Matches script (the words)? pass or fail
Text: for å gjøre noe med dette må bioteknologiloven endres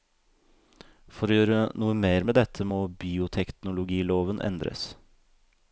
fail